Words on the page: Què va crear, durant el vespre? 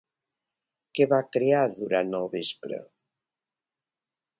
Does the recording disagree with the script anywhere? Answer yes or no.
no